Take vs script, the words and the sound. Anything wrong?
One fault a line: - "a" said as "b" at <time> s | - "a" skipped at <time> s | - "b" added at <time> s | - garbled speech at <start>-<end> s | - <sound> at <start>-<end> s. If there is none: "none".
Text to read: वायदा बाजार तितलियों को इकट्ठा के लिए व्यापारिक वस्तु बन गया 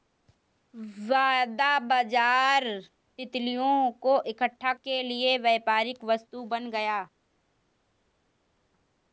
none